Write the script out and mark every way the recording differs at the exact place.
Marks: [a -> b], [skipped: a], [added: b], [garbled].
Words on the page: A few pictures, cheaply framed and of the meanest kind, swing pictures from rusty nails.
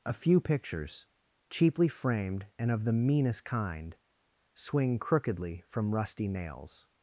A few pictures, cheaply framed and of the meanest kind, swing [pictures -> crookedly] from rusty nails.